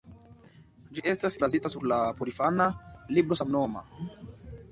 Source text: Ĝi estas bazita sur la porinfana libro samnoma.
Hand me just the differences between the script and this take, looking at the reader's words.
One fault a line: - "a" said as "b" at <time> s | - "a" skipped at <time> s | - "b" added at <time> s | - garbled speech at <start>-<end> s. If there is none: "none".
none